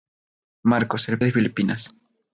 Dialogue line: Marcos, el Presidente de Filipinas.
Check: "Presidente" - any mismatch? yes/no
yes